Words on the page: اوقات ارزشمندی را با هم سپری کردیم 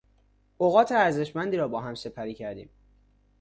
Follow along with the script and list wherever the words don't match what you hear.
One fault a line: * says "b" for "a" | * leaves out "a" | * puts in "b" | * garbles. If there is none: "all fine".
all fine